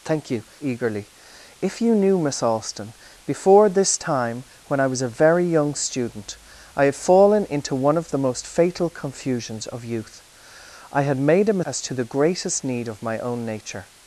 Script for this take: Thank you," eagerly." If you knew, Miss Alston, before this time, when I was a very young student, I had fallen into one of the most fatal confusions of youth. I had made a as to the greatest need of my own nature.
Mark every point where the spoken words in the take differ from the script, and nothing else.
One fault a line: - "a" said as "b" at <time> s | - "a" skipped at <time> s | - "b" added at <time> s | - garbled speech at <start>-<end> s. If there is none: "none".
none